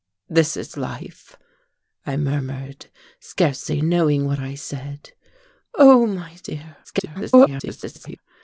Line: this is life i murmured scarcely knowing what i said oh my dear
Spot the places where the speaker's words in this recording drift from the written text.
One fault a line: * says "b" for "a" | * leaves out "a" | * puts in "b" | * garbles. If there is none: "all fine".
* garbles